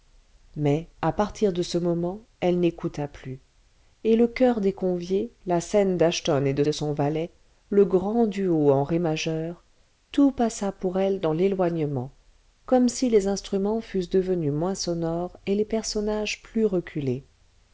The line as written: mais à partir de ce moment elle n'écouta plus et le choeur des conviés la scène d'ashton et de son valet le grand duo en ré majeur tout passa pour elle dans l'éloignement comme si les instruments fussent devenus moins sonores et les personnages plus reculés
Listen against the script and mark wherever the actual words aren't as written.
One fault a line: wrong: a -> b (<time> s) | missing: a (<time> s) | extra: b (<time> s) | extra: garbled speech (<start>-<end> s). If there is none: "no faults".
extra: de (6.6 s)